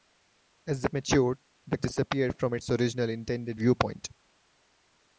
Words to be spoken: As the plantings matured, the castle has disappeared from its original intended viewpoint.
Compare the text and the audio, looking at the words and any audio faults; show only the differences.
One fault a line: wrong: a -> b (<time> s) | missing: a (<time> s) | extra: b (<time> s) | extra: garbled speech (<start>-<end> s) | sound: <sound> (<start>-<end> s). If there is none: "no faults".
missing: plantings (0.9 s)
missing: castle has (1.8 s)